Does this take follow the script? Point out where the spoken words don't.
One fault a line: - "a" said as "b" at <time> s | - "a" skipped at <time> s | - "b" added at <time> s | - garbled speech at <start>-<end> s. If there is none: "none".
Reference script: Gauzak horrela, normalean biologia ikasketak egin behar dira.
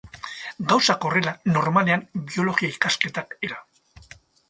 - "egin behar" skipped at 3.4 s